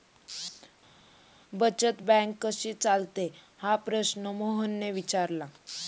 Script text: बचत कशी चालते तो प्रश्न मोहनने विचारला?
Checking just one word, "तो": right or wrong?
wrong